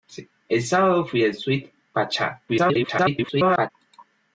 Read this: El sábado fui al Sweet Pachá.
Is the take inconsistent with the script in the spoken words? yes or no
yes